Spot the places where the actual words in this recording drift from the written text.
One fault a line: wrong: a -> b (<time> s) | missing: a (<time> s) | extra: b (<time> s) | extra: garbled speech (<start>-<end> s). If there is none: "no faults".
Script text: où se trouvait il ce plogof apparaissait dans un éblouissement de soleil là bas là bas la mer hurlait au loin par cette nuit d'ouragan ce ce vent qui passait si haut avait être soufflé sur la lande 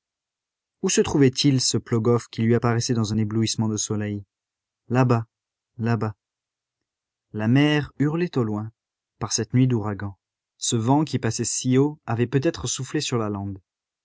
extra: qui lui (2.3 s)
missing: ce (10.8 s)
extra: peut (12.3 s)